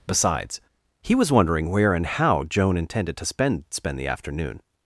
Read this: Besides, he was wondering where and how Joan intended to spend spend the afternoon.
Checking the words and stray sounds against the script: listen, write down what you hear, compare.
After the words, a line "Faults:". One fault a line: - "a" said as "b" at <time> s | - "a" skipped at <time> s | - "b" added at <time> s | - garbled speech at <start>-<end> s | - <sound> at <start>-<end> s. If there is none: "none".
Besides, he was wondering where and how Joan intended to spend spend the afternoon.
Faults:
none